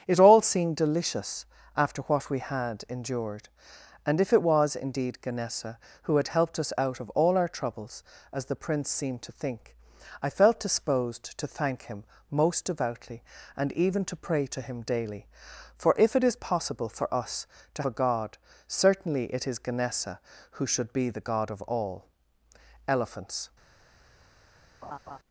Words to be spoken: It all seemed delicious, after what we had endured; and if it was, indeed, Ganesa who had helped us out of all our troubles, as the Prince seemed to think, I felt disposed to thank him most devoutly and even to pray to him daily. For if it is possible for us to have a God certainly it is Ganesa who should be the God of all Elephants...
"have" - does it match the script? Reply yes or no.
no